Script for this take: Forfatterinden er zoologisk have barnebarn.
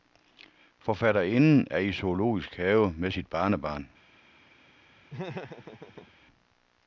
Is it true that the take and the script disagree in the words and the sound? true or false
true